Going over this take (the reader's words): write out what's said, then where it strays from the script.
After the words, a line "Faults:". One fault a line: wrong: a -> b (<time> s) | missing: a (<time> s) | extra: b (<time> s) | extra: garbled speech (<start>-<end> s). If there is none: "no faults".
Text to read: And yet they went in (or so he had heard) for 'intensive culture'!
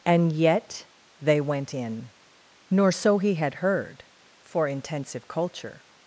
And yet they went in (nor so he had heard) for 'intensive culture'!
Faults:
wrong: or -> nor (2.7 s)